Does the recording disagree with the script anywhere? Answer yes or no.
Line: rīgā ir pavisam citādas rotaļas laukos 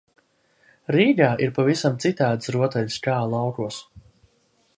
yes